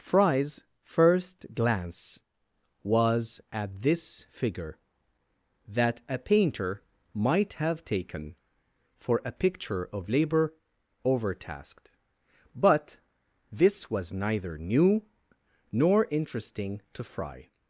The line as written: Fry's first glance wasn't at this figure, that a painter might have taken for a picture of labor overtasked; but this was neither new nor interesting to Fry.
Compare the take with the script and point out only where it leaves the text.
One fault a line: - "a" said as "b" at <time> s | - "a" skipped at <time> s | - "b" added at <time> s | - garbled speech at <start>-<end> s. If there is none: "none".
- "wasn't" said as "was" at 2.8 s